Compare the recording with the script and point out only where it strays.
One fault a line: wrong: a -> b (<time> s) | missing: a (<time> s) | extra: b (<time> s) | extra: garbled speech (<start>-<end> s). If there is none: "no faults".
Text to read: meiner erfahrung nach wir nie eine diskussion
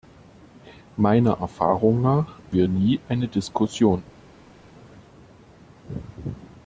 no faults